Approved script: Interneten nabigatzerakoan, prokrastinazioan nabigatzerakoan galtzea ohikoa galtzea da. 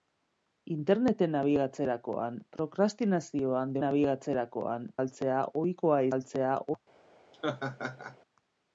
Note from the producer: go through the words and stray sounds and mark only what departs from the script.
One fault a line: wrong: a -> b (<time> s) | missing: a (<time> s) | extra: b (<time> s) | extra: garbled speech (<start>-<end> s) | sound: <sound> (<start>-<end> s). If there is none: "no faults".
sound: laugh (7.3-8.2 s)